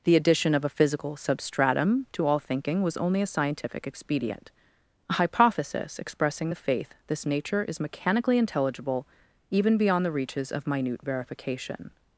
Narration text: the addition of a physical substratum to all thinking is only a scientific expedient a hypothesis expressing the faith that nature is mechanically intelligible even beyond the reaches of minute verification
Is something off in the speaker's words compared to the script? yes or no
yes